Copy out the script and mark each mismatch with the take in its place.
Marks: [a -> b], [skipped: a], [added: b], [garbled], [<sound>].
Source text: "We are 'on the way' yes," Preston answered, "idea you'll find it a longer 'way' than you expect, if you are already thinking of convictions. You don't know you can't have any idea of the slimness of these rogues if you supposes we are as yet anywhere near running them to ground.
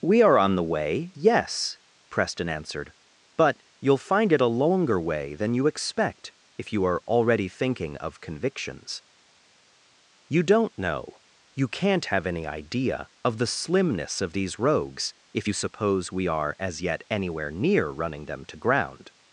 "We are 'on the way' yes," Preston answered, ["idea -> but] you'll find it a longer 'way' than you expect, if you are already thinking of convictions. You don't know you can't have any idea of the slimness of these rogues if you [supposes -> suppose] we are as yet anywhere near running them to ground.